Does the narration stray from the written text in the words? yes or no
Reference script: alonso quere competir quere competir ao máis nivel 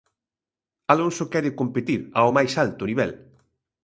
yes